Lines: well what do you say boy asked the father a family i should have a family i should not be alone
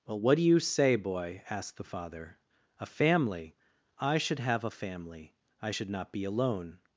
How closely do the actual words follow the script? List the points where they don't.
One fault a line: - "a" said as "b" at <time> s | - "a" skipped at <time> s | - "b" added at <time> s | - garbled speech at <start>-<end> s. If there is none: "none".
none